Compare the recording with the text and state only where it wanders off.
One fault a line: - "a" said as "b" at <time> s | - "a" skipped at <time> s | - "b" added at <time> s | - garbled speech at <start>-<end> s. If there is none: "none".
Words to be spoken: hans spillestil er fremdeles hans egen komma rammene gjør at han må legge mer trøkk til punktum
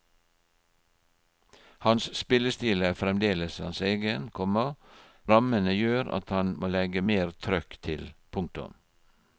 none